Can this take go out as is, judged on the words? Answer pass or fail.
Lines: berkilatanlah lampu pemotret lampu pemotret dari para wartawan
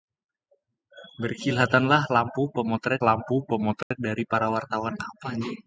pass